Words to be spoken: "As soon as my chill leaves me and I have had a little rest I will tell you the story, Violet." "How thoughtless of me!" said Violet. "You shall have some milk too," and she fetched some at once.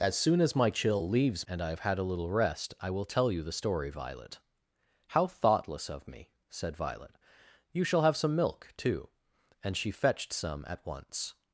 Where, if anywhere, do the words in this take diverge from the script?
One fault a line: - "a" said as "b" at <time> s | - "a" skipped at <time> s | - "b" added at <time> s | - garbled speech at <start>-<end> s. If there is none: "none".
- "me" skipped at 1.5 s